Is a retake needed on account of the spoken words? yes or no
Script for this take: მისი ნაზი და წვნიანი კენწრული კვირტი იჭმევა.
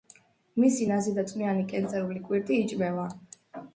no